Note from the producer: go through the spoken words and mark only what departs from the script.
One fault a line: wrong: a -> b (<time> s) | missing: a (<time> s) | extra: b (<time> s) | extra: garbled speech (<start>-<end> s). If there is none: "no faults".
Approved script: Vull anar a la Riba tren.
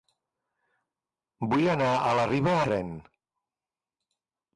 no faults